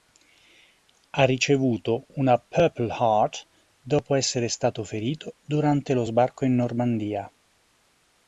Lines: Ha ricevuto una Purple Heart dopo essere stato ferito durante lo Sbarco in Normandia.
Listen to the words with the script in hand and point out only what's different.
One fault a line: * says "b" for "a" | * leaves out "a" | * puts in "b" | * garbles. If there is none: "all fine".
all fine